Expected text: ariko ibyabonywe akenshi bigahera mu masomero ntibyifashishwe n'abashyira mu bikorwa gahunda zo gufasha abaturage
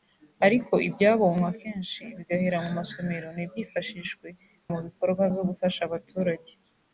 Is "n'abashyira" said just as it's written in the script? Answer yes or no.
no